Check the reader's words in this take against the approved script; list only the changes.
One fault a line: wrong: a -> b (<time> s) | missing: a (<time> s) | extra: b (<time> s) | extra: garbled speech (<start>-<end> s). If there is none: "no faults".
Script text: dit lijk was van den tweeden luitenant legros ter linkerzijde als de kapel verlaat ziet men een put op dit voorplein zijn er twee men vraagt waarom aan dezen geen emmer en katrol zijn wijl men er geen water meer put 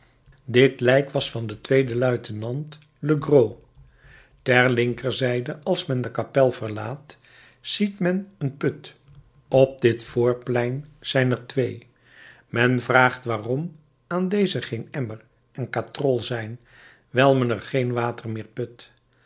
extra: men (5.9 s)